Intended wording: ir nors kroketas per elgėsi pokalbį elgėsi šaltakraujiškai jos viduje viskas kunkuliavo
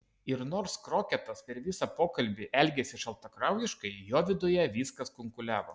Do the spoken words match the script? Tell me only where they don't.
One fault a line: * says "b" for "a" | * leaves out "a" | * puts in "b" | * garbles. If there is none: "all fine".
* says "visą" for "elgėsi"
* says "jo" for "jos"